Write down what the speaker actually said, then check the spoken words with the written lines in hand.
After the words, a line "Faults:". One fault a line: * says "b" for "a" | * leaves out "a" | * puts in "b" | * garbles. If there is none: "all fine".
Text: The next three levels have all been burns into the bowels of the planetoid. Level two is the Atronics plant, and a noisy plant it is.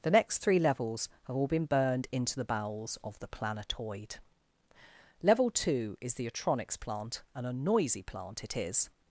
The next three levels have all been burned into the bowels of the planetoid. Level two is the Atronics plant, and a noisy plant it is.
Faults:
* says "burned" for "burns"